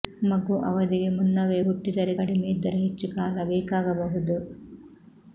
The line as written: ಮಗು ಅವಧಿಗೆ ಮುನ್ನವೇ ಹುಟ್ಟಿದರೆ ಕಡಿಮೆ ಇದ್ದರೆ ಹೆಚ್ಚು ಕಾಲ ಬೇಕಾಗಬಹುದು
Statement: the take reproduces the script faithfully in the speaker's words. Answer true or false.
true